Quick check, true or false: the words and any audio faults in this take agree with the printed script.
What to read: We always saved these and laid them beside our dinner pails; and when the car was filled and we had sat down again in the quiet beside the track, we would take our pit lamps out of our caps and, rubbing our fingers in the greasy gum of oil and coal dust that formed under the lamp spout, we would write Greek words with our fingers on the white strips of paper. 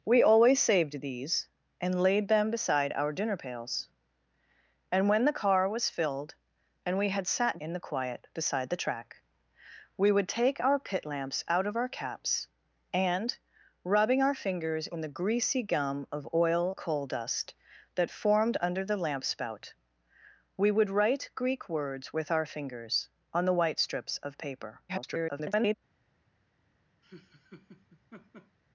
false